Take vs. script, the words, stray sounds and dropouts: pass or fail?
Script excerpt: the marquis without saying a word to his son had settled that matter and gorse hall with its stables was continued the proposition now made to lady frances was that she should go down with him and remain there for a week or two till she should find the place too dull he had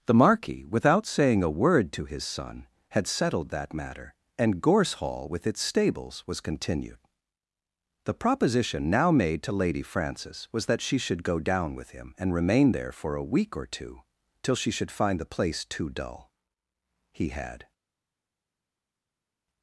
pass